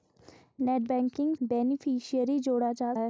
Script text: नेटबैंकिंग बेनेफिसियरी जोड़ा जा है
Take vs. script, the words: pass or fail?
pass